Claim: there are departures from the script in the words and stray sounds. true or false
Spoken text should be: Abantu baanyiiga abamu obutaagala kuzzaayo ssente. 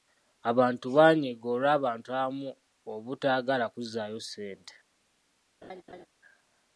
true